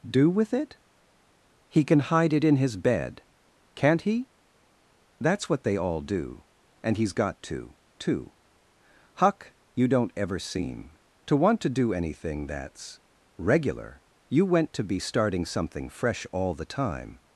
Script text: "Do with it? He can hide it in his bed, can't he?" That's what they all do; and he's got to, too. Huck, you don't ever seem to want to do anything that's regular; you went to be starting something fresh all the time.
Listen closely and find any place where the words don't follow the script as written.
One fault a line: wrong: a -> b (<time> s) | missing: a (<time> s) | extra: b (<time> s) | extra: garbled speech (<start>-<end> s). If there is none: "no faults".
no faults